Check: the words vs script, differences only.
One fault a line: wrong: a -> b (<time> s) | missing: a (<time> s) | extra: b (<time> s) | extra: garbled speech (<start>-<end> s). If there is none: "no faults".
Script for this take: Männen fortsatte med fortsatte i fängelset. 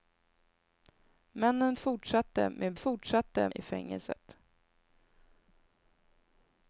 no faults